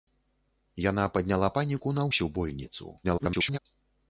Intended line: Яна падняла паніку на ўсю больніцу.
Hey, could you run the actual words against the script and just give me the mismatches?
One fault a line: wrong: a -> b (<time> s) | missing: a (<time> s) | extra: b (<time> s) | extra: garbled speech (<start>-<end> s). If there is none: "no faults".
extra: garbled speech (3.0-3.6 s)